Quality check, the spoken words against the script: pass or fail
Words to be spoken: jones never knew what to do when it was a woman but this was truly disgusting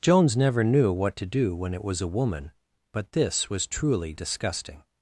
pass